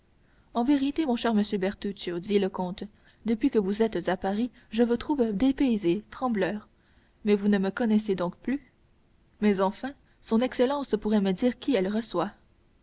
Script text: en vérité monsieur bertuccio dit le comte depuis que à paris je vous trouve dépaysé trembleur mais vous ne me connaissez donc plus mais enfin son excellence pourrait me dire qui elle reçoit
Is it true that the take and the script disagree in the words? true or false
true